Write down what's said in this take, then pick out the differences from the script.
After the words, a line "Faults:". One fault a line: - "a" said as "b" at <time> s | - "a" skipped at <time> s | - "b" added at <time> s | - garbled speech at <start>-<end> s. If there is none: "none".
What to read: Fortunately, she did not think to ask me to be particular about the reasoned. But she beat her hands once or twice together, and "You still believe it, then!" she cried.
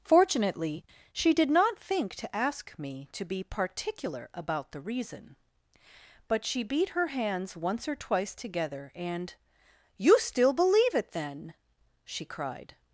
Fortunately, she did not think to ask me to be particular about the reason. But she beat her hands once or twice together, and "You still believe it, then!" she cried.
Faults:
- "reasoned" said as "reason" at 4.8 s